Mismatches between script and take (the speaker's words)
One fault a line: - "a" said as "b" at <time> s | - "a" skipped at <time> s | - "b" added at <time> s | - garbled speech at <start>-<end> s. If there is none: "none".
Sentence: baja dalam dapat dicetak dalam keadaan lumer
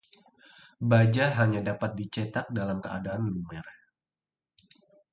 - "dalam" said as "hanya" at 1.4 s